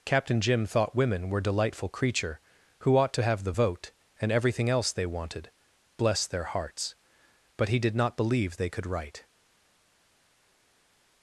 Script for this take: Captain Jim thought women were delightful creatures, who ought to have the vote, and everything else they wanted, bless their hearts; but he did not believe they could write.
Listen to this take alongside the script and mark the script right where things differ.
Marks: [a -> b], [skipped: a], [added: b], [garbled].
Captain Jim thought women were delightful [creatures, -> creature] who ought to have the vote, and everything else they wanted, bless their hearts; but he did not believe they could write.